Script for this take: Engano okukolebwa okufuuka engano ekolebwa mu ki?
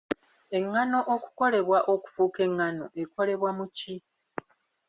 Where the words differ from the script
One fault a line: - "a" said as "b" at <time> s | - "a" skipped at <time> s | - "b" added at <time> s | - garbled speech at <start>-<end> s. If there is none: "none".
none